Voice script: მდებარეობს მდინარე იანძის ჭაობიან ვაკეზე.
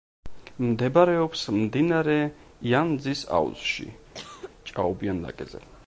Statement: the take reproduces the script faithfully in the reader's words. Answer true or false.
false